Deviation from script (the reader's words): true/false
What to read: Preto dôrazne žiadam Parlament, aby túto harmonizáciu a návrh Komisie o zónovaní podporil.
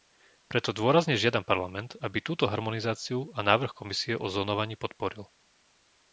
false